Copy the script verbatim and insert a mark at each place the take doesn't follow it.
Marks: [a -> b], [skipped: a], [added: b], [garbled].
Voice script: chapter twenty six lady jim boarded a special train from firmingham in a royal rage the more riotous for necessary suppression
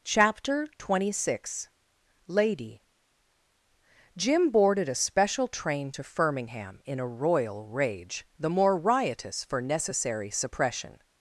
chapter twenty six lady jim boarded a special train [from -> to] firmingham in a royal rage the more riotous for necessary suppression